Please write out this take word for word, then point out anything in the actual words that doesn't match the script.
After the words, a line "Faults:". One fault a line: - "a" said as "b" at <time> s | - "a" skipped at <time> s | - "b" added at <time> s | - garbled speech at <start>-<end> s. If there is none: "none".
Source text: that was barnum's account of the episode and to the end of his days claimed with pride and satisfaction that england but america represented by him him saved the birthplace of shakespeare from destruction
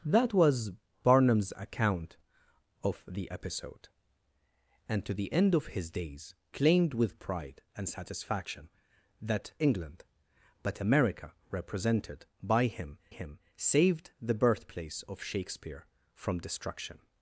that was barnum's account of the episode and to the end of his days claimed with pride and satisfaction that england but america represented by him him saved the birthplace of shakespeare from destruction
Faults:
none